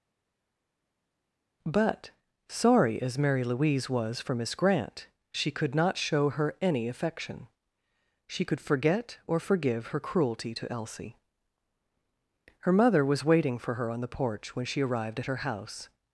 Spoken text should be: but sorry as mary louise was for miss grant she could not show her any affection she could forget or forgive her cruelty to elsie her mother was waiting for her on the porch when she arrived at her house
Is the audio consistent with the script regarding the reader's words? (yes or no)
yes